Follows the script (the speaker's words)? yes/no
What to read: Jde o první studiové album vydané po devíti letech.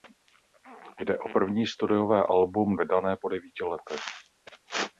yes